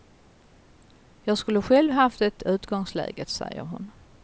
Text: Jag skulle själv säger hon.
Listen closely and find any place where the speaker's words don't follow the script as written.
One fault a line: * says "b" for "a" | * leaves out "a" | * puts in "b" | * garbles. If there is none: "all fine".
* puts in "haft det utgångsläget"